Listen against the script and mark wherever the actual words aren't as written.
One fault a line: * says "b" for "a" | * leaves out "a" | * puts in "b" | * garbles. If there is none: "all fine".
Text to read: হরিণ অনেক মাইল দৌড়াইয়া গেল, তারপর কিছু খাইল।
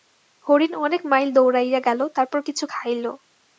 all fine